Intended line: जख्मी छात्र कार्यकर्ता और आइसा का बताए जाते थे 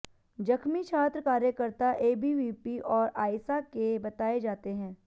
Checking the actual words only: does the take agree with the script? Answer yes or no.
no